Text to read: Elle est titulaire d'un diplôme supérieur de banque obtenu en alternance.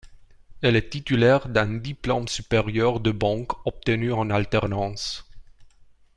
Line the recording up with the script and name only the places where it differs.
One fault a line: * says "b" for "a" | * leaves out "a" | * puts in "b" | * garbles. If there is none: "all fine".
all fine